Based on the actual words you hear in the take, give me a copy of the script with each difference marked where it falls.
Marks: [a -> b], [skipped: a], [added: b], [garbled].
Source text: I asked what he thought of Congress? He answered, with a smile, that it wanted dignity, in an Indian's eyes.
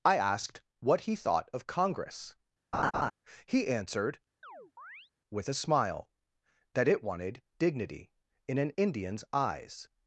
I asked what he thought of Congress? He answered, with a smile, that it wanted dignity, in an Indian's eyes.